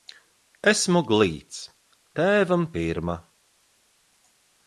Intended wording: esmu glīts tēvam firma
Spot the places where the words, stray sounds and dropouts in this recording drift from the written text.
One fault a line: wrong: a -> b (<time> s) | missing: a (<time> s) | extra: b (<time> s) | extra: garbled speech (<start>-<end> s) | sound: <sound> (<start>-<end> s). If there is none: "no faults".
no faults